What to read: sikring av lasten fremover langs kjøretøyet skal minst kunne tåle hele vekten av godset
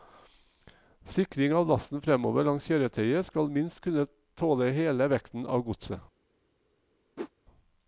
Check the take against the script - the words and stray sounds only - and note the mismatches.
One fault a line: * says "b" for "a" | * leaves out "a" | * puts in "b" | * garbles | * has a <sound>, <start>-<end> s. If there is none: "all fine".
* has a whoosh, 7.2-7.3 s